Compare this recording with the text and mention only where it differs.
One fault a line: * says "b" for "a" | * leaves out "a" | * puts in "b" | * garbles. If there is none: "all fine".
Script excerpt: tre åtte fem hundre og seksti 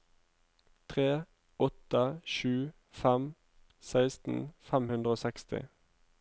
* puts in "sju fem seksten"